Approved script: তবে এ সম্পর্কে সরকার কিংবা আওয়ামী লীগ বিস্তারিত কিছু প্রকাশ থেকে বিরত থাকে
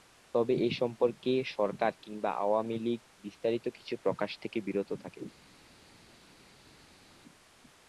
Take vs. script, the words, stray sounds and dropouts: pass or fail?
pass